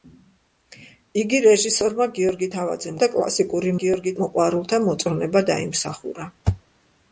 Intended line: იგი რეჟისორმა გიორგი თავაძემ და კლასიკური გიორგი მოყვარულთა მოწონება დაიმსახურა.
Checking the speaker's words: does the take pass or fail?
pass